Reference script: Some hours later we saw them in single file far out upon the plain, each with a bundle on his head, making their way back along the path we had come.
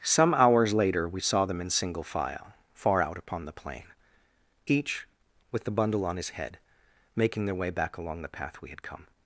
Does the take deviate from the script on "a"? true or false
true